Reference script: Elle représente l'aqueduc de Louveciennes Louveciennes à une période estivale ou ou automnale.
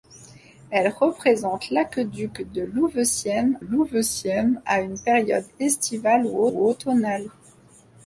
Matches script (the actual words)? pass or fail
pass